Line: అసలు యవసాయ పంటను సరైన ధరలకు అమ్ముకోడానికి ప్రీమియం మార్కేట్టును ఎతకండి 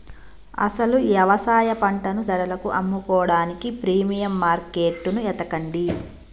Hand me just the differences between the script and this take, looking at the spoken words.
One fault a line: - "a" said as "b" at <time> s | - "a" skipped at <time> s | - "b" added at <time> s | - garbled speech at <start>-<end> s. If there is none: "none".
- "సరైన" skipped at 2.2 s